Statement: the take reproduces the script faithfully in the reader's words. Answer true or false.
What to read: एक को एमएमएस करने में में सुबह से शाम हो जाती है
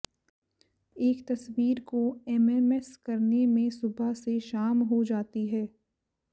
false